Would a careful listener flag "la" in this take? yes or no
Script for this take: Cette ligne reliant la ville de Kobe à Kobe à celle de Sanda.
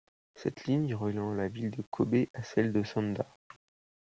no